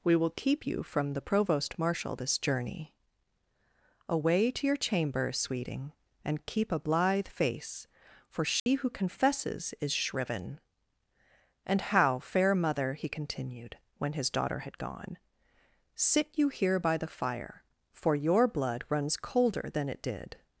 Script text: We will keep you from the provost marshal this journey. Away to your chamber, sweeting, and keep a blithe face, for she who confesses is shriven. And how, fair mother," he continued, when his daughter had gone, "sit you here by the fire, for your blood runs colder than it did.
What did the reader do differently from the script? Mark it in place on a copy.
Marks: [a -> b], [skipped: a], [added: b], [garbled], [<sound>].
We will keep you from the provost marshal this journey. Away to your chamber, sweeting, and keep a blithe face, for she [dropout] who confesses is shriven. And how, fair mother," he continued, when his daughter had gone, "sit you here by the fire, for your blood runs colder than it did.